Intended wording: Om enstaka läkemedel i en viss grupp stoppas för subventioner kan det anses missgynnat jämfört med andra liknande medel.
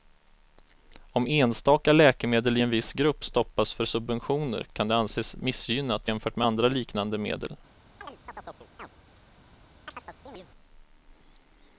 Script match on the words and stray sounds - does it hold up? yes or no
no